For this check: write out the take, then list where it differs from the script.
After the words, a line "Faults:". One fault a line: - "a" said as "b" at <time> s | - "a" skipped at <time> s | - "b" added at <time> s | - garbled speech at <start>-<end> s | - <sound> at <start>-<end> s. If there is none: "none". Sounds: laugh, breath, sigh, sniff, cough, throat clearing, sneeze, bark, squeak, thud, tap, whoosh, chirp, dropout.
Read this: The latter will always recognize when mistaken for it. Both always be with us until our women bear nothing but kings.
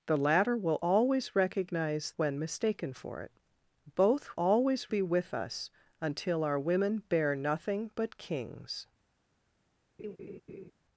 The latter will always recognize when mistaken for it. Both always be with us until our women bear nothing but kings.
Faults:
- laugh at 10.0-10.7 s